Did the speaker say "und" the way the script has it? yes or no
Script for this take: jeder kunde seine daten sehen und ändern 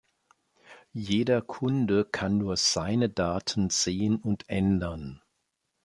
yes